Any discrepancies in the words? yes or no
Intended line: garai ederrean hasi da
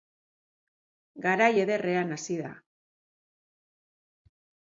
no